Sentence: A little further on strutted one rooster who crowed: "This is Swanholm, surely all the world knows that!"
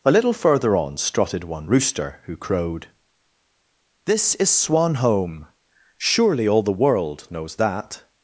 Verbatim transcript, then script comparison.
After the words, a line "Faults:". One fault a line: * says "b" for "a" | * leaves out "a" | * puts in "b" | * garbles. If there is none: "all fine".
A little further on strutted one rooster who crowed: "This is Swanholm, surely all the world knows that!"
Faults:
all fine